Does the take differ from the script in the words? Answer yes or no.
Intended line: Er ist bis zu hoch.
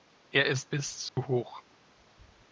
no